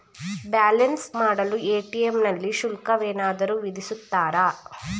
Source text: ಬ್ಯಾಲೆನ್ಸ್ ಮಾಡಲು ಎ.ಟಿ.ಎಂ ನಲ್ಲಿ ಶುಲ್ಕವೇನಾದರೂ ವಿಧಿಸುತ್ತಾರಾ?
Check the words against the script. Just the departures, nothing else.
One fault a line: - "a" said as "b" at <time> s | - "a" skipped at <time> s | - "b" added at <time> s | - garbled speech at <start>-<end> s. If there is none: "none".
none